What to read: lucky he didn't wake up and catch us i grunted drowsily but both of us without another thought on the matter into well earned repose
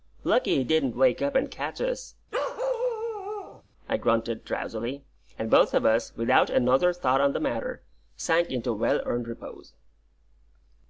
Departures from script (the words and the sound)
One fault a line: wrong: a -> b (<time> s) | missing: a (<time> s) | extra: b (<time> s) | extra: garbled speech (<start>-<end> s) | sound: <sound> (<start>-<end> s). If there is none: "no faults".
sound: bark (2.3-3.6 s)
wrong: but -> and (5.4 s)
extra: sank (8.2 s)